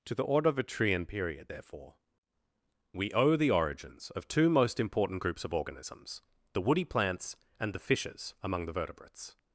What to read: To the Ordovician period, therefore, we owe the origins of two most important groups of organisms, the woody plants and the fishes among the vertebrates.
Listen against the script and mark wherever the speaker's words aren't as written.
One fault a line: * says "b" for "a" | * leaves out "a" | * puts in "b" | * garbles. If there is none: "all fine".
all fine